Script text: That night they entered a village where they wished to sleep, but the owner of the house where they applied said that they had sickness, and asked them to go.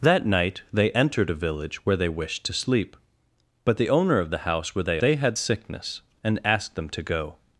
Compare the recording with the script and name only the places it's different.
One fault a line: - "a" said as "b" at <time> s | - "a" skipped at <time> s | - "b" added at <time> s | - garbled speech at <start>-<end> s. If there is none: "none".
- "applied said that" skipped at 5.0 s